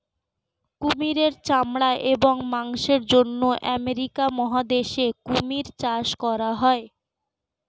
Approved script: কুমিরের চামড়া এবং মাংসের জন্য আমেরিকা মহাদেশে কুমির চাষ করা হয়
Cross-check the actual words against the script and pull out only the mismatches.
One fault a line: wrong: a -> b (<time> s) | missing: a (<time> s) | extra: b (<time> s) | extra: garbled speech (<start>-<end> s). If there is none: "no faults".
no faults